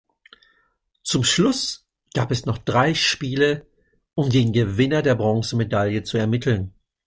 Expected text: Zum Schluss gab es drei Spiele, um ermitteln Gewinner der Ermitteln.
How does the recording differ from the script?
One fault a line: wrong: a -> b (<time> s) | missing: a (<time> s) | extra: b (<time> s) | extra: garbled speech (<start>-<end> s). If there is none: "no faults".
extra: noch (2.5 s)
wrong: ermitteln -> den (4.3 s)
extra: Bronzemedaille zu (5.2 s)